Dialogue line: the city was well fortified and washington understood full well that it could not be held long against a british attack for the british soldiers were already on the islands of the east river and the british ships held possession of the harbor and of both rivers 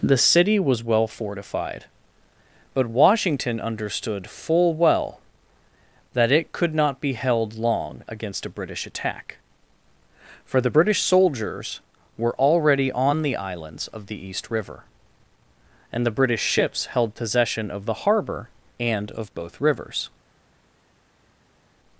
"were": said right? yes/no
yes